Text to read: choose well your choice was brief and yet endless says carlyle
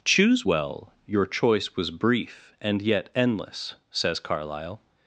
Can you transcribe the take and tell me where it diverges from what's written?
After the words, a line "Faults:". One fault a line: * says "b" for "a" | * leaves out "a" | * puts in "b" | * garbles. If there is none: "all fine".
choose well your choice was brief and yet endless says carlyle
Faults:
all fine